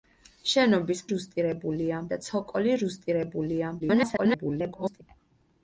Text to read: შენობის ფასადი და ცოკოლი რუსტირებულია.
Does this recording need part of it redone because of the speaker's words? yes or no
yes